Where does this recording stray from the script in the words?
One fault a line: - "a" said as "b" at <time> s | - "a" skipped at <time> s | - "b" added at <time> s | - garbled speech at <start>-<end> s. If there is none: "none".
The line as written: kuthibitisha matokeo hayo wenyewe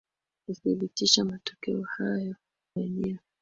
none